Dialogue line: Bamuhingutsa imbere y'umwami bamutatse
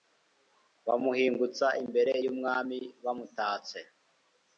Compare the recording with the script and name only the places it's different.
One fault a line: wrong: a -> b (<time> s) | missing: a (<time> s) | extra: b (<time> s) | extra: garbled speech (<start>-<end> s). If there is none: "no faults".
no faults